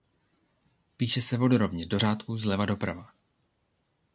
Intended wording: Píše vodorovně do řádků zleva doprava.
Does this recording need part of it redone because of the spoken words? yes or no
yes